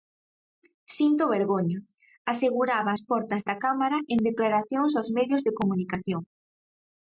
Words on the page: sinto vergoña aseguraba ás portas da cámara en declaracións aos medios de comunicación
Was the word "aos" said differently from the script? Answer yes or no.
no